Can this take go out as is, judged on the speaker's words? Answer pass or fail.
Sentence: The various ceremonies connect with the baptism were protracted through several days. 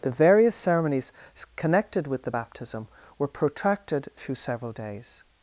fail